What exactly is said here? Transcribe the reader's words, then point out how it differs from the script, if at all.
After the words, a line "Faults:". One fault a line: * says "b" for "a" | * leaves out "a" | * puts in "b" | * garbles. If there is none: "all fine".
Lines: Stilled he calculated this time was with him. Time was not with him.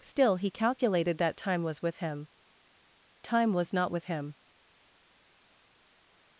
Still he calculated that time was with him. Time was not with him.
Faults:
* says "Still" for "Stilled"
* says "that" for "this"